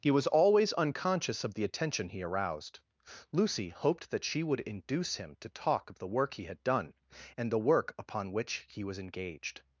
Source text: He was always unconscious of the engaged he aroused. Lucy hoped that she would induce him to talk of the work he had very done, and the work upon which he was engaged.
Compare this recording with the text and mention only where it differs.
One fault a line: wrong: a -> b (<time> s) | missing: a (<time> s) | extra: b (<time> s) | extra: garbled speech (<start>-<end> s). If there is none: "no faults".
wrong: engaged -> attention (1.6 s)
missing: very (6.6 s)